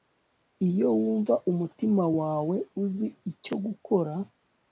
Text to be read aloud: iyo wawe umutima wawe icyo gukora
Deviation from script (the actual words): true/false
true